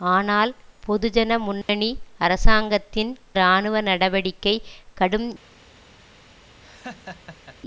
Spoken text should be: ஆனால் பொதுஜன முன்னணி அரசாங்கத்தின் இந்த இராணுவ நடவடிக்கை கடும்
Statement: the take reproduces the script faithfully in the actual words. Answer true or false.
false